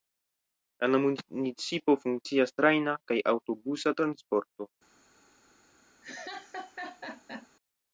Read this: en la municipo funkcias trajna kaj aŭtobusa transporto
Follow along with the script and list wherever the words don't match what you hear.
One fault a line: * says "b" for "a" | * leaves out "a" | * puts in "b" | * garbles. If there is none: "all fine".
all fine